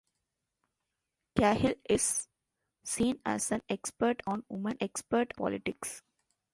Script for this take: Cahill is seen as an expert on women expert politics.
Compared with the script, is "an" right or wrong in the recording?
right